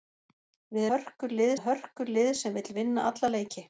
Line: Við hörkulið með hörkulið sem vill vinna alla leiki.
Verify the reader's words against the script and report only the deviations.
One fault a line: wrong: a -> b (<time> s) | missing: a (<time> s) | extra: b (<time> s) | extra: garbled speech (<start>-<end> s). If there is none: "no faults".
no faults